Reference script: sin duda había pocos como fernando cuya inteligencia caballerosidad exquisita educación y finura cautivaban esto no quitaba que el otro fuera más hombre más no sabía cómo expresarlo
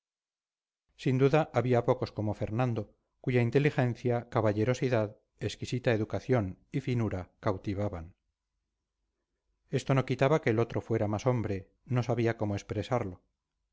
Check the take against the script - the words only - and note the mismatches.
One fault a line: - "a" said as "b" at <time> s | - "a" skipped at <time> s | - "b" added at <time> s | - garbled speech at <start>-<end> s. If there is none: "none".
- "más" skipped at 11.7 s